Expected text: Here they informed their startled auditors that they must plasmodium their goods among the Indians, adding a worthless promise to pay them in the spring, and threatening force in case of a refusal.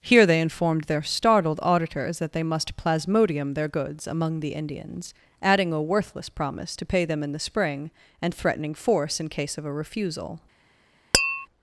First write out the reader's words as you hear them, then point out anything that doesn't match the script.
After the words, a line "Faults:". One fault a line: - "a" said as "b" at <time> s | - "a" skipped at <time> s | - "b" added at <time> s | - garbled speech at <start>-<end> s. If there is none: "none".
Here they informed their startled auditors that they must plasmodium their goods among the Indians, adding a worthless promise to pay them in the spring, and threatening force in case of a refusal.
Faults:
none